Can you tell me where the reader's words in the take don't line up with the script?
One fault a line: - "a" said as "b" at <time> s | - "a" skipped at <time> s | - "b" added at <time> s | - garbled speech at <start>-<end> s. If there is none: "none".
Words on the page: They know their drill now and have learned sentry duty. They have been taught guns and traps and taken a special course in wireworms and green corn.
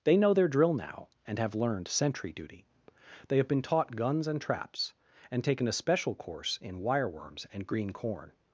none